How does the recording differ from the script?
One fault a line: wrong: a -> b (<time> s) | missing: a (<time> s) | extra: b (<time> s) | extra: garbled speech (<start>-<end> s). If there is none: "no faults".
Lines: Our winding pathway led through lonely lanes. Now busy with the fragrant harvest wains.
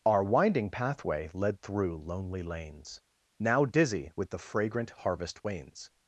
wrong: busy -> dizzy (3.6 s)